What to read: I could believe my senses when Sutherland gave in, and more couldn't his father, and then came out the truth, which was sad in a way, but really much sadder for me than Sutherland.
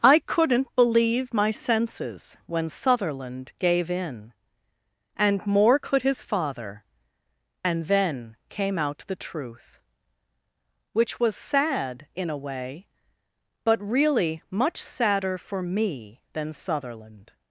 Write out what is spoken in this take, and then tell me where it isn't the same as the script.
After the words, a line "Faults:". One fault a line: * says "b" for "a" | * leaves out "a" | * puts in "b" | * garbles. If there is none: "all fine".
I couldn't believe my senses when Sutherland gave in, and more could his father, and then came out the truth, which was sad in a way, but really much sadder for me than Sutherland.
Faults:
* says "couldn't" for "could"
* says "could" for "couldn't"